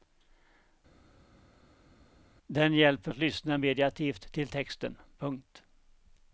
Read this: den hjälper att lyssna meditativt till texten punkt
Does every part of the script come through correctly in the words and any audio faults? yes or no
yes